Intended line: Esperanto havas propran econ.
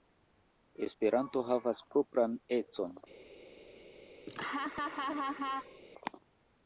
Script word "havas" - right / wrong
right